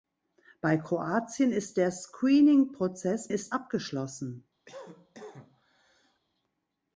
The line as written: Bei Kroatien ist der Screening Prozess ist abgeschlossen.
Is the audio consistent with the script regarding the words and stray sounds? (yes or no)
no